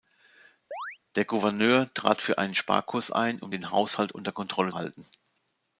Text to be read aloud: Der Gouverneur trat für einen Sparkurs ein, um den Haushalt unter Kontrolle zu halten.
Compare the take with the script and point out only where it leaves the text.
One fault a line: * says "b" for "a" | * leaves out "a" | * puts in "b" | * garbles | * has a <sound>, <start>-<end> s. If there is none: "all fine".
* has a chirp, 0.7-1.0 s
* leaves out "zu"